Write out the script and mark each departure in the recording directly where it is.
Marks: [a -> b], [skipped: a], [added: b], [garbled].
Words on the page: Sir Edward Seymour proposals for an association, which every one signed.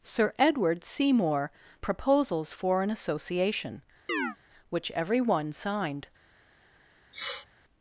Sir Edward Seymour proposals for an association, which every one signed.